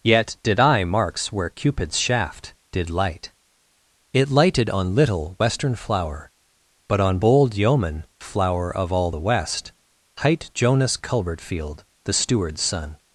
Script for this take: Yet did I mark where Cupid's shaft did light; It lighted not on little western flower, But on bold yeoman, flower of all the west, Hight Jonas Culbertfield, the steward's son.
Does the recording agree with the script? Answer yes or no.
no